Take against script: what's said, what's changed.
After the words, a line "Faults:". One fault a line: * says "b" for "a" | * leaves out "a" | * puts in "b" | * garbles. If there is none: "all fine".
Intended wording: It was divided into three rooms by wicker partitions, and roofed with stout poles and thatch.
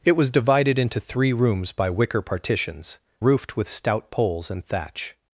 It was divided into three rooms by wicker partitions, roofed with stout poles and thatch.
Faults:
* leaves out "and"